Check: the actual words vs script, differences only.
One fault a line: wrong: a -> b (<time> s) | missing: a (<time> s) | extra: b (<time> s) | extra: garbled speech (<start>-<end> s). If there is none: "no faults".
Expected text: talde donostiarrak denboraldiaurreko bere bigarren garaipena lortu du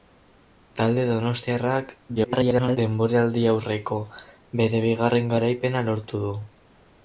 extra: garbled speech (2.2-2.8 s)